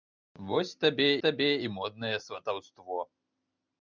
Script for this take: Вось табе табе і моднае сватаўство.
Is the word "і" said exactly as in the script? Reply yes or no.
yes